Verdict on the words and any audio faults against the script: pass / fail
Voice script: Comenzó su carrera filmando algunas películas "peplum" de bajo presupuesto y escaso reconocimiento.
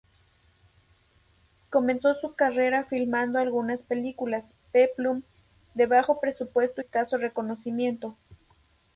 fail